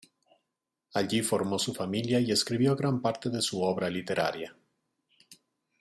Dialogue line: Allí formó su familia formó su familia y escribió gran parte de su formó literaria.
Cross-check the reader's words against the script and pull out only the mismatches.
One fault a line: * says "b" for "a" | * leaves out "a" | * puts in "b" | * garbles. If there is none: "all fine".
* leaves out "formó su familia"
* says "obra" for "formó"